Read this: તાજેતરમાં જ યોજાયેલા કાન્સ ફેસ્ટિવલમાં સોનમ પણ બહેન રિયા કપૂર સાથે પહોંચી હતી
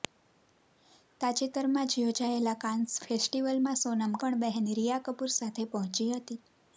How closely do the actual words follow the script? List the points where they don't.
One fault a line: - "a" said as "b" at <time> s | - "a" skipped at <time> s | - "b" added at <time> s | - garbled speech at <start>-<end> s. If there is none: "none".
none